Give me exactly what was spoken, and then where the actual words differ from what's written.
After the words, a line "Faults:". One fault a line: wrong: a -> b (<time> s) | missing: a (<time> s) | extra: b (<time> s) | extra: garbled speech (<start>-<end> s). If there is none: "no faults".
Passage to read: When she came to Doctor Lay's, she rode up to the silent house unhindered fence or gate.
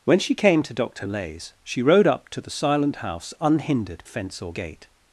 When she came to Doctor Lay's, she rode up to the silent house unhindered fence or gate.
Faults:
no faults